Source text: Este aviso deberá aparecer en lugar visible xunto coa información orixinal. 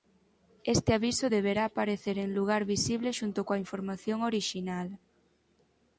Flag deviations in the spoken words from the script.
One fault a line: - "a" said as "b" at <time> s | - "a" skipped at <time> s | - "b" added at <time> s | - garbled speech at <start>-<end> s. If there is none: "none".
none